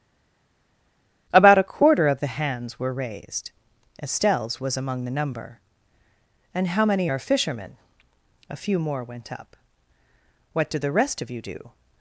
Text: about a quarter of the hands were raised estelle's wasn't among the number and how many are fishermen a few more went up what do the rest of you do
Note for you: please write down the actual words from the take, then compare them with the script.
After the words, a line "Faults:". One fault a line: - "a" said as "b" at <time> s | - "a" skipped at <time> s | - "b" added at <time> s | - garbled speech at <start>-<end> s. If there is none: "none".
about a quarter of the hands were raised estelle's was among the number and how many are fishermen a few more went up what do the rest of you do
Faults:
- "wasn't" said as "was" at 4.6 s